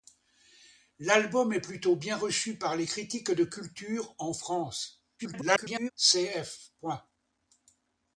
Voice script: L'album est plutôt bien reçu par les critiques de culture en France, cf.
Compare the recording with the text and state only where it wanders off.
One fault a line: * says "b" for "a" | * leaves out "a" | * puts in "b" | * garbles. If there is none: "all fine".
* garbles